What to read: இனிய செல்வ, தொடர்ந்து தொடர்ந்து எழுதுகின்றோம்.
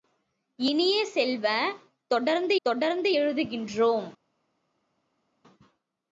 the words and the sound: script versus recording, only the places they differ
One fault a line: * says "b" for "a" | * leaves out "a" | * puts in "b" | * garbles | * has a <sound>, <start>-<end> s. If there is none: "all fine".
all fine